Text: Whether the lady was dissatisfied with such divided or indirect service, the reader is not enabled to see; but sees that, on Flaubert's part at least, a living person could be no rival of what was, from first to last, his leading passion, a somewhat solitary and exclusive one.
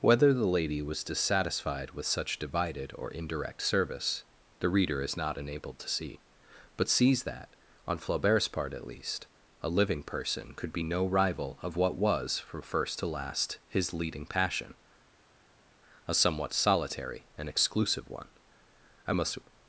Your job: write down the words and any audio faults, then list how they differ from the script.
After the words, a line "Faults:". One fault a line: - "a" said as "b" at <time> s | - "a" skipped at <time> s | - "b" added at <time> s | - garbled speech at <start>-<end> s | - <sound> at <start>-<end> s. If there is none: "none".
Whether the lady was dissatisfied with such divided or indirect service, the reader is not enabled to see; but sees that, on Flaubert's part at least, a living person could be no rival of what was, from first to last, his leading passion, a somewhat solitary and exclusive one. I must
Faults:
- "I must" added at 19.1 s